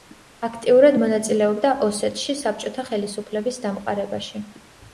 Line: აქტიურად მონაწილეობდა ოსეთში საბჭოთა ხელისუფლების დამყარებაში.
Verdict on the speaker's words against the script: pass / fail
pass